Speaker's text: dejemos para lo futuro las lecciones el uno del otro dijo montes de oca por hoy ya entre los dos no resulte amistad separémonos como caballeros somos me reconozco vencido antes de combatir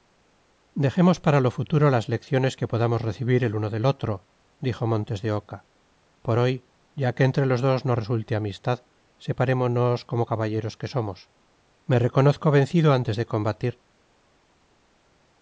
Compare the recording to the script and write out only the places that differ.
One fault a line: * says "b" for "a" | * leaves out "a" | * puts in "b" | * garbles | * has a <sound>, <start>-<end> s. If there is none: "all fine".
* puts in "que podamos recibir"
* puts in "que"
* puts in "que"